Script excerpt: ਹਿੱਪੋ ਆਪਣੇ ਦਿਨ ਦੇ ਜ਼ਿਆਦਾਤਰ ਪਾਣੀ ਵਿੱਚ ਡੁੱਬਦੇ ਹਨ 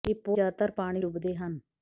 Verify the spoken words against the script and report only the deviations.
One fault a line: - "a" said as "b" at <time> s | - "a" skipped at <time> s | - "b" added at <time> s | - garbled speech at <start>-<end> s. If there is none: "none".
- "ਆਪਣੇ ਦਿਨ ਦੇ" skipped at 0.4 s
- "ਵਿੱਚ" skipped at 1.0 s